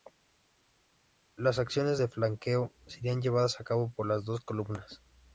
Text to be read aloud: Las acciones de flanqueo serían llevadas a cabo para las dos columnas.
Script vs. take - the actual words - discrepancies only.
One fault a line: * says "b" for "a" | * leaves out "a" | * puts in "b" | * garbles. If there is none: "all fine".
* says "por" for "para"